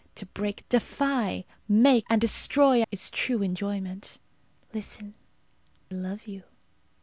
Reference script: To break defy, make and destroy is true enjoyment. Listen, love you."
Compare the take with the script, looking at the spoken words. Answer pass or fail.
pass